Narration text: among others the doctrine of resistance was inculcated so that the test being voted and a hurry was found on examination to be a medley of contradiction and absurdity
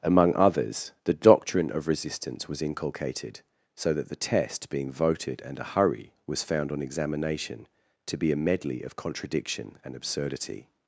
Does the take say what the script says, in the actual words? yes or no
yes